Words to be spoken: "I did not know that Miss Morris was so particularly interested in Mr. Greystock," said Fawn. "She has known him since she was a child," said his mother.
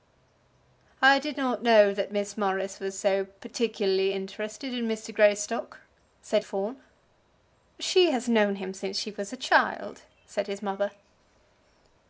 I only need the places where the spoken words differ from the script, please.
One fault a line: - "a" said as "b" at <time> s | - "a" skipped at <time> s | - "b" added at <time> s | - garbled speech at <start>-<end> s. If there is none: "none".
none